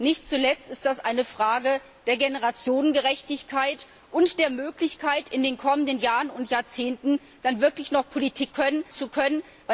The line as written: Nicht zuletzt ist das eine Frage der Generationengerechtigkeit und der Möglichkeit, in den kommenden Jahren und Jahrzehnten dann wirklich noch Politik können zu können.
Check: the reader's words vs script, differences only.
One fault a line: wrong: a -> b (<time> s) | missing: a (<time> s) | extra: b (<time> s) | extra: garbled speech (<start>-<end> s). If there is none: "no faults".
no faults